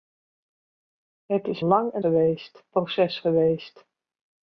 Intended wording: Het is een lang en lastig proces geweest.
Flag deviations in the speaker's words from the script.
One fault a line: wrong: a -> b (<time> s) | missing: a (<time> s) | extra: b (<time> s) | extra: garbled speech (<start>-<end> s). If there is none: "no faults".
missing: een (1.6 s)
wrong: lastig -> geweest (2.0 s)